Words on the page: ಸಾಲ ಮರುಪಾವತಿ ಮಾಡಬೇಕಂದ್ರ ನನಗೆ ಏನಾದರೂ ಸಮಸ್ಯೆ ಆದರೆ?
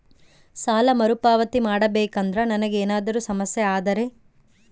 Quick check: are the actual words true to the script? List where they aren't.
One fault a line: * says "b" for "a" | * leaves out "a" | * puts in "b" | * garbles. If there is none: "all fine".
all fine